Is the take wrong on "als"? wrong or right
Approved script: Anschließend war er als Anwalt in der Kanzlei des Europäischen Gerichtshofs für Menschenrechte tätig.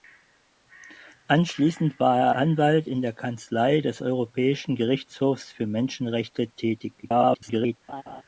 wrong